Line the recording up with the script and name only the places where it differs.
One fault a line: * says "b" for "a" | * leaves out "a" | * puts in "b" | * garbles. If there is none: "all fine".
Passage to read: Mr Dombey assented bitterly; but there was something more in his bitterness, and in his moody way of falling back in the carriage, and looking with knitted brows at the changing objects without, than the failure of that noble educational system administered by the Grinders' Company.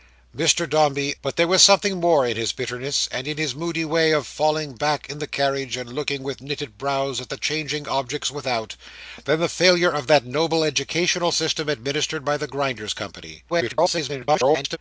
* leaves out "assented bitterly"
* garbles